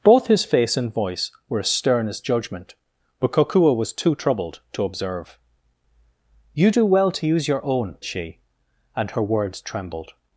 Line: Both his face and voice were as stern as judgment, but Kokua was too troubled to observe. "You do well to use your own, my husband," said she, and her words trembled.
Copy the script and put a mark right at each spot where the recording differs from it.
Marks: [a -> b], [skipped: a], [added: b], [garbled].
Both his face and voice were as stern as judgment, but Kokua was too troubled to observe. "You do well to use your own, [skipped: my husband," said] she, and her words trembled.